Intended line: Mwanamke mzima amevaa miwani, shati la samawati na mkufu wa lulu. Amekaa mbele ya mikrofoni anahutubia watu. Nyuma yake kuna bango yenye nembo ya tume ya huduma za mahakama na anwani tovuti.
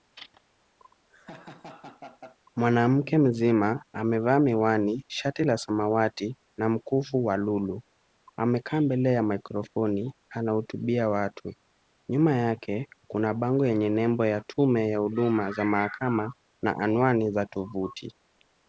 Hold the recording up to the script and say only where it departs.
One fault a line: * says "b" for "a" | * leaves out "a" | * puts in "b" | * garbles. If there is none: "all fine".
* puts in "za"